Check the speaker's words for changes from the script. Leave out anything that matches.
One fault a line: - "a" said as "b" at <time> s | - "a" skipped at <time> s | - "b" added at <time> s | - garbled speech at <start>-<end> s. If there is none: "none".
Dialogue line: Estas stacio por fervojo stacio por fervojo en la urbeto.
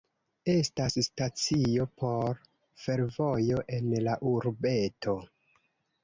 - "stacio por fervojo" skipped at 3.6 s